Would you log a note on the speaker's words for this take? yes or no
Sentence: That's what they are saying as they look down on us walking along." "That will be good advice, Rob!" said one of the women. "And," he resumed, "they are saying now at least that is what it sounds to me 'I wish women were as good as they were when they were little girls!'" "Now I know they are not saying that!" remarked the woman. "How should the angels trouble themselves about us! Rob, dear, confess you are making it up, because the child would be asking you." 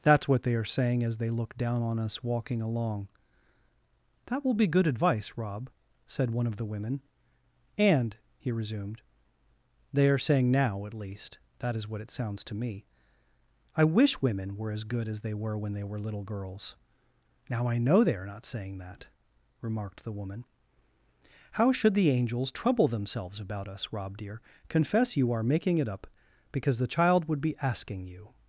no